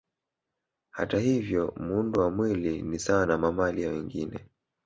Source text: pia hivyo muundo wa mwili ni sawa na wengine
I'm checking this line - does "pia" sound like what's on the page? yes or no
no